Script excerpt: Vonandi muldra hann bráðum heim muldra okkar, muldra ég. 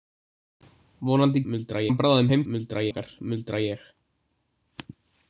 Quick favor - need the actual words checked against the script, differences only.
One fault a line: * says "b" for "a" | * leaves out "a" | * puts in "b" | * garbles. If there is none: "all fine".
all fine